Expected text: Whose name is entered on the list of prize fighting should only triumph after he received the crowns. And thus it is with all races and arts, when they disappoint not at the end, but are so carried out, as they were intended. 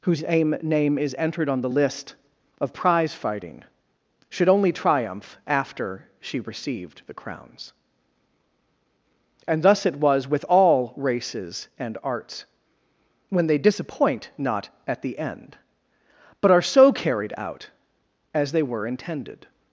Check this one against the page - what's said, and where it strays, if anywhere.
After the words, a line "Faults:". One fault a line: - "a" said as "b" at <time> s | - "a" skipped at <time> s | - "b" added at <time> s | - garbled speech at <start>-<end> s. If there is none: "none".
Whose name is entered on the list of prize fighting should only triumph after she received the crowns. And thus it was with all races and arts, when they disappoint not at the end, but are so carried out, as they were intended.
Faults:
- "he" said as "she" at 6.2 s
- "is" said as "was" at 10.0 s